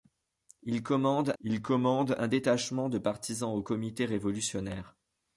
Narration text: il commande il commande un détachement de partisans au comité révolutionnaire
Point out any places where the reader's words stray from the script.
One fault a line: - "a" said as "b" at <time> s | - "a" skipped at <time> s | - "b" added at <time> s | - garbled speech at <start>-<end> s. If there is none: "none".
none